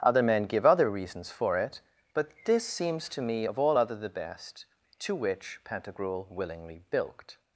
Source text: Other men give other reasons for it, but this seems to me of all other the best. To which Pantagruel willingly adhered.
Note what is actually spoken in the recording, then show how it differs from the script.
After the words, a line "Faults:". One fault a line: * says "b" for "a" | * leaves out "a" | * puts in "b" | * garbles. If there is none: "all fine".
Other men give other reasons for it, but this seems to me of all other the best. To which Pantagruel willingly bilked.
Faults:
* says "bilked" for "adhered"